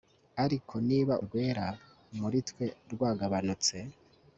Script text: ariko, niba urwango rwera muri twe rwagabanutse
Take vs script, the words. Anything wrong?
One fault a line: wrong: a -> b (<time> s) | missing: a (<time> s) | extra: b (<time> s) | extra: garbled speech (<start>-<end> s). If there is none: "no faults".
missing: urwango (1.1 s)